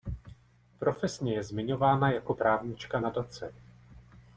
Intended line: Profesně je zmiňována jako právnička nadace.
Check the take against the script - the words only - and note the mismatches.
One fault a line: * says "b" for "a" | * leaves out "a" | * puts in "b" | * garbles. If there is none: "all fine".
all fine